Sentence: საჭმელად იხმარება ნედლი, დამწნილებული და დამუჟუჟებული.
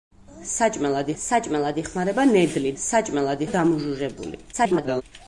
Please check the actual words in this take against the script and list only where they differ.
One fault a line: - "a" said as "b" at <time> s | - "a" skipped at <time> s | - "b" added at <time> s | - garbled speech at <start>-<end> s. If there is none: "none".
- "საჭმელად" added at 1.2 s
- "დამწნილებული" said as "საჭმელად" at 2.8 s
- garbled speech at 4.5-5.0 s